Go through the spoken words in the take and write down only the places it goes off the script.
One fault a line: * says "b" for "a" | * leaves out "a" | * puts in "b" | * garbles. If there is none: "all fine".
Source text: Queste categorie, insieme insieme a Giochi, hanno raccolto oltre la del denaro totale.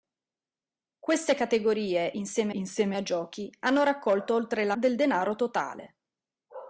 all fine